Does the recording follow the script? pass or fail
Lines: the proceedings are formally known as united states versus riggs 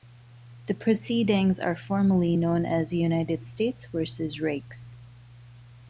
pass